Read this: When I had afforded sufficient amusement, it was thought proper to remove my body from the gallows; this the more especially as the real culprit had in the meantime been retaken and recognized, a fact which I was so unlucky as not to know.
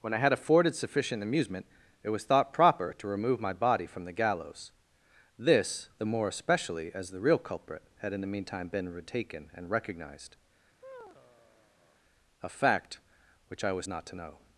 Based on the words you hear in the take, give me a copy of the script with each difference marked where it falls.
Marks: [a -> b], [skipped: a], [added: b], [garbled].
When I had afforded sufficient amusement, it was thought proper to remove my body from the gallows; this the more especially as the real culprit had in the meantime been retaken and recognized, a fact which I was [skipped: so unlucky as] not to know.